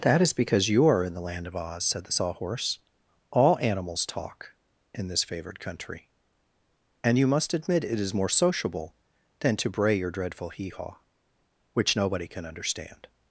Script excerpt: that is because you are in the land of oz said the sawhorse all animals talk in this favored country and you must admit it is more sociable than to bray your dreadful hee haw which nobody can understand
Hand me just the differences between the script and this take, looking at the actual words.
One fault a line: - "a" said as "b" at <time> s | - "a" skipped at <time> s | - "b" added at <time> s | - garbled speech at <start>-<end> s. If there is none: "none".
none